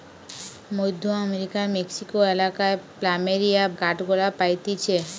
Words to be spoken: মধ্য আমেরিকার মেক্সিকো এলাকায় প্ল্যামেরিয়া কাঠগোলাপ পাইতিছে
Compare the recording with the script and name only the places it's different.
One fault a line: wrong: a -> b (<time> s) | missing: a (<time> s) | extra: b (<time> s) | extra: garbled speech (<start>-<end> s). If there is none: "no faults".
no faults